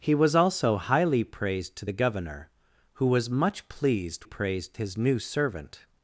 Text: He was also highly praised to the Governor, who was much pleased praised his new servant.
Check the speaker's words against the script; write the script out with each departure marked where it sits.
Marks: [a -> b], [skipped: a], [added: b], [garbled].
He was also highly praised to the Governor, who was much pleased praised his new servant.